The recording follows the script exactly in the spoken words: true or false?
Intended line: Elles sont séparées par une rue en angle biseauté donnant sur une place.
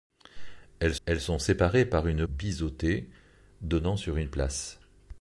false